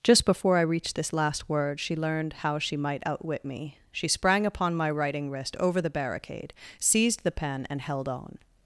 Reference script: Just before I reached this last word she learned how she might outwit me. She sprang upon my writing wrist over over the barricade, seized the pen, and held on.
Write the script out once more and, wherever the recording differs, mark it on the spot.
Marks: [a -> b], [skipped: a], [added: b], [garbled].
Just before I reached this last word she learned how she might outwit me. She sprang upon my writing wrist over [skipped: over] the barricade, seized the pen, and held on.